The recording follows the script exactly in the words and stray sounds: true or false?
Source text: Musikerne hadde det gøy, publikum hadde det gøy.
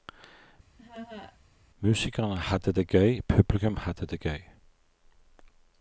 false